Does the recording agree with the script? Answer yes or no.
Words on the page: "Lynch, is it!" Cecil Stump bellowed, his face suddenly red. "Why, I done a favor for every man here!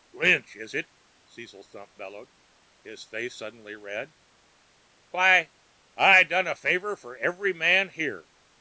yes